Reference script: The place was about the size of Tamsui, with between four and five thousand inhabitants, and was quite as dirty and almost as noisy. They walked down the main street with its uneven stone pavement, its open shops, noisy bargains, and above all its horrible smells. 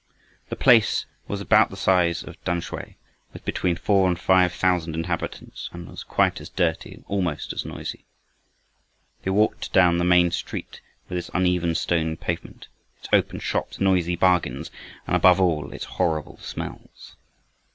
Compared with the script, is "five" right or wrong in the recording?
right